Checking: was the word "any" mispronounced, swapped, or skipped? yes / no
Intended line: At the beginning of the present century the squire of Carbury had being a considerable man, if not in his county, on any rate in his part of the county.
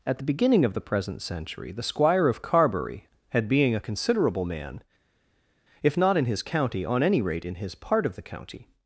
no